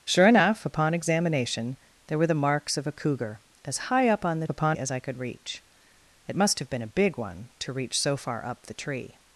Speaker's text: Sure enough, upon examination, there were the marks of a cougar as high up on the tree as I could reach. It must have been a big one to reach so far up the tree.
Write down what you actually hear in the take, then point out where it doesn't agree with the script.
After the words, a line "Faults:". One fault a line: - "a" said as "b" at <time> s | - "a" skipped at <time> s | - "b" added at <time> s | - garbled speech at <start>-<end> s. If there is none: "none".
Sure enough, upon examination, there were the marks of a cougar as high up on the upon as I could reach. It must have been a big one to reach so far up the tree.
Faults:
- "tree" said as "upon" at 4.5 s